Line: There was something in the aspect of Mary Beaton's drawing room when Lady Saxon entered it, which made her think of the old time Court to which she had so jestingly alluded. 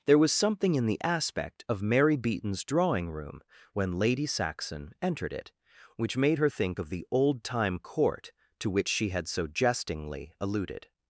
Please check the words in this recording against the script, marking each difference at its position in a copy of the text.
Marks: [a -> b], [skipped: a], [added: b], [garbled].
There was something in the aspect of Mary Beaton's drawing room when Lady Saxon entered it, which made her think of the old time Court to which she had so jestingly alluded.